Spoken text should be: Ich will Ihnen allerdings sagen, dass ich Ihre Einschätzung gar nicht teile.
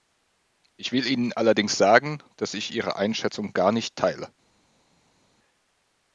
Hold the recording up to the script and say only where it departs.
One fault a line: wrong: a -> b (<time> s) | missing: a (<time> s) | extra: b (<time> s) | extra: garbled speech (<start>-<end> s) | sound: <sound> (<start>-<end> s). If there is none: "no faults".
no faults